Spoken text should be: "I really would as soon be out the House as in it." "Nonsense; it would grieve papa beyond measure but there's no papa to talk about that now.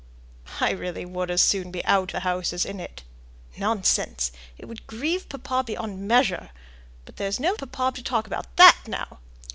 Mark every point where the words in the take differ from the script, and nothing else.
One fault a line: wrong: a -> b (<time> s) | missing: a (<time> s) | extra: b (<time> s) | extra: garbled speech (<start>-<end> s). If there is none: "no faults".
no faults